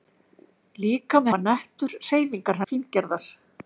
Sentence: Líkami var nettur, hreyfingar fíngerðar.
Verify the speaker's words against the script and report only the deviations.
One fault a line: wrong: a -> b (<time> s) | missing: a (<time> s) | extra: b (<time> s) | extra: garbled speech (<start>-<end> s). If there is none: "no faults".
no faults